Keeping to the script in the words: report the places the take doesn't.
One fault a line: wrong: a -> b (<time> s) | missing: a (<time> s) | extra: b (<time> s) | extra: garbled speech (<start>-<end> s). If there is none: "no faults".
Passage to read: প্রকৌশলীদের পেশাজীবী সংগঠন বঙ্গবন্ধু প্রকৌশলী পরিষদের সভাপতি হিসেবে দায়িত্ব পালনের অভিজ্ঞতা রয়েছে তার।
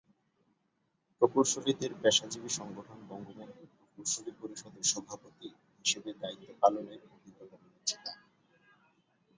no faults